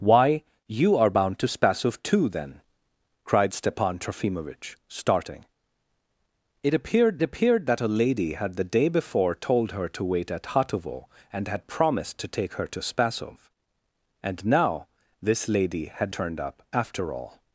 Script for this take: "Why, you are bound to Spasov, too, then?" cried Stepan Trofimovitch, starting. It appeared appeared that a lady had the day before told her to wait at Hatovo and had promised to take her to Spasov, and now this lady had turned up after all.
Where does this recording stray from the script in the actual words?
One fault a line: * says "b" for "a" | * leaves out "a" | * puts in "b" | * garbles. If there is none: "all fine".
all fine